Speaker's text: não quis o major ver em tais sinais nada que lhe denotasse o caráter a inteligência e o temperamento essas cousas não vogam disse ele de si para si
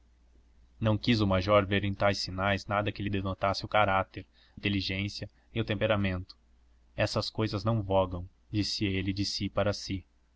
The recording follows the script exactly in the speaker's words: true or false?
false